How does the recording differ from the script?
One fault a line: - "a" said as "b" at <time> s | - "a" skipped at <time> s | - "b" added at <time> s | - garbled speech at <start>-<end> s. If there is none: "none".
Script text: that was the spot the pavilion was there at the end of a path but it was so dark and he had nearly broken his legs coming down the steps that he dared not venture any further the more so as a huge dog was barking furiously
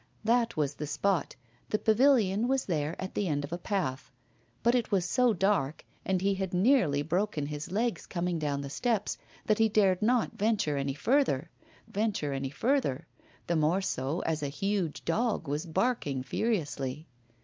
- "venture any further" added at 11.9 s